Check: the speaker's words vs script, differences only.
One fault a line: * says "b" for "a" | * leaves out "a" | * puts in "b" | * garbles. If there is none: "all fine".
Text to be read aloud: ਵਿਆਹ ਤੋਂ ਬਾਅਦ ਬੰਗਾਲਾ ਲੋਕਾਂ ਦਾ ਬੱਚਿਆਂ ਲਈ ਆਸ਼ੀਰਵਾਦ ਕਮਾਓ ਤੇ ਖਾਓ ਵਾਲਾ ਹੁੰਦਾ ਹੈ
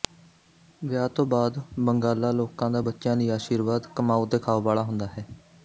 all fine